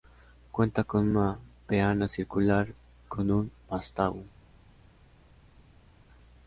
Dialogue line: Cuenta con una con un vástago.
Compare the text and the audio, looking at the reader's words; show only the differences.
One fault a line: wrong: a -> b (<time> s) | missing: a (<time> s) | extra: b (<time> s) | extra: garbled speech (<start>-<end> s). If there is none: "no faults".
extra: peana circular (1.7 s)